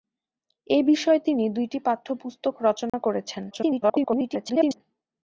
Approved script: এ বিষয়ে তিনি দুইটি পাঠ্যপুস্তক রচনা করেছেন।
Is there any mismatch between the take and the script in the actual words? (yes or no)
yes